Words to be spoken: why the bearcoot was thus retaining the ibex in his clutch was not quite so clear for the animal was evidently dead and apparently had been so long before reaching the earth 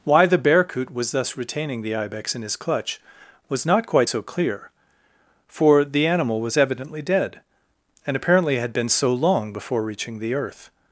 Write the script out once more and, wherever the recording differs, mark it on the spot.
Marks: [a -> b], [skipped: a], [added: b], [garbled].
why the bearcoot was thus retaining the ibex in his clutch was not quite so clear for the animal was evidently dead and apparently had been so long before reaching the earth